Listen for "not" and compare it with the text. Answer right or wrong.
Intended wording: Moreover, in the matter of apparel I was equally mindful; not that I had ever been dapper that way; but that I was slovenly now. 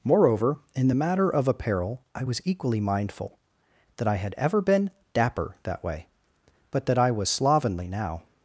wrong